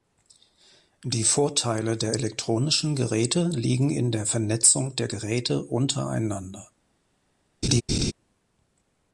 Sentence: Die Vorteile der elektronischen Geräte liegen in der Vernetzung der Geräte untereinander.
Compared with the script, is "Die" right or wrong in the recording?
right